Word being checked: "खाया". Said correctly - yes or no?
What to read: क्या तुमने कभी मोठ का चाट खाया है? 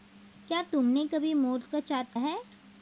no